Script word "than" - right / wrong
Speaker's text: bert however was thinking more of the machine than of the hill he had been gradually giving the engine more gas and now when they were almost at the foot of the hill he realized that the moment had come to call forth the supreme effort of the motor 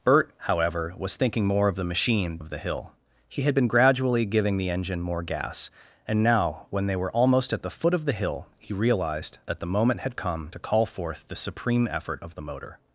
wrong